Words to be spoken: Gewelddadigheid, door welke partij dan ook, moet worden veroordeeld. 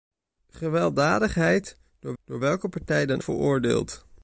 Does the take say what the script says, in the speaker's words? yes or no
no